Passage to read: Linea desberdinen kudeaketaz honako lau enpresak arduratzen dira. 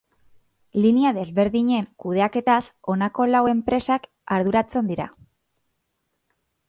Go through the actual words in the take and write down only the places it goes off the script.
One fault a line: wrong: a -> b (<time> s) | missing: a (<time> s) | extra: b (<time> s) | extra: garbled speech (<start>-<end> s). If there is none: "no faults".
no faults